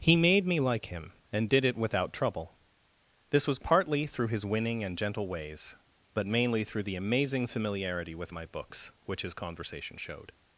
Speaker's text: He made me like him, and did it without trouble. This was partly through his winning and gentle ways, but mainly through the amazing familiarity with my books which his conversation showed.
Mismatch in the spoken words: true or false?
false